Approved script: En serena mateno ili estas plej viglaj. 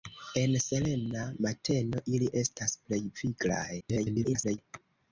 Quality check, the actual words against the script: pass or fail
fail